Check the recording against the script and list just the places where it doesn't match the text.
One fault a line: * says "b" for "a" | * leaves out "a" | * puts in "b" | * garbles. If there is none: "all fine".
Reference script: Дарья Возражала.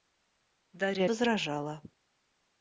all fine